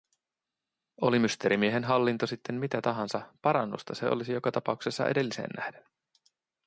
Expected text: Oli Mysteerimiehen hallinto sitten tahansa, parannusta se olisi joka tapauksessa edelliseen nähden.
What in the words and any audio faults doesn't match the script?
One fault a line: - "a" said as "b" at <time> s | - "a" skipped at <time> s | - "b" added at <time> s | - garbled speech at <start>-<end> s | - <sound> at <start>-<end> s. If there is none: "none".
- "mitä" added at 2.5 s